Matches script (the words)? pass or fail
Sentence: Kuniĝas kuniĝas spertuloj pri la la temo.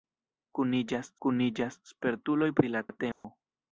pass